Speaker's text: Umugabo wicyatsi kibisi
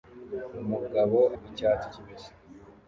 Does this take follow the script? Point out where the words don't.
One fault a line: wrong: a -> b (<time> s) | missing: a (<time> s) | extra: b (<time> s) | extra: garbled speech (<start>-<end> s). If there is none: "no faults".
no faults